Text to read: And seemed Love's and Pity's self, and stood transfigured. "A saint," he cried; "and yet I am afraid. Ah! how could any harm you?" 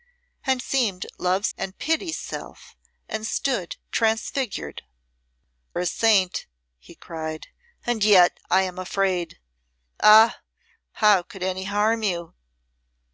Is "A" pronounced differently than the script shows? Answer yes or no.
no